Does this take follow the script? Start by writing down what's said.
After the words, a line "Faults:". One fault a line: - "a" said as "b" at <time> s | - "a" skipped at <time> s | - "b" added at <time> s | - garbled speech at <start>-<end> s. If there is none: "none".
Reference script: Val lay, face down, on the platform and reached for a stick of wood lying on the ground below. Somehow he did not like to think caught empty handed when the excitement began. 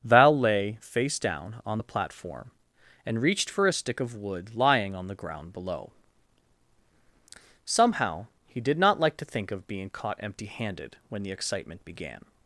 Val lay, face down, on the platform and reached for a stick of wood lying on the ground below. Somehow he did not like to think of being caught empty handed when the excitement began.
Faults:
- "of being" added at 9.5 s